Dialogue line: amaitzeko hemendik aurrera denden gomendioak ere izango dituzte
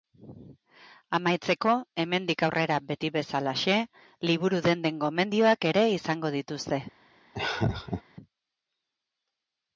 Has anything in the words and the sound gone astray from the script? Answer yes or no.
yes